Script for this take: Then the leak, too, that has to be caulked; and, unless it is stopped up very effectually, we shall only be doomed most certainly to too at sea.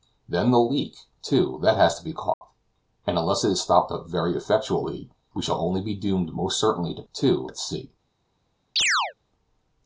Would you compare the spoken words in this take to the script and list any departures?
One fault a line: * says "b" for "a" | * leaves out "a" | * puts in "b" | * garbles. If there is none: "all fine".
all fine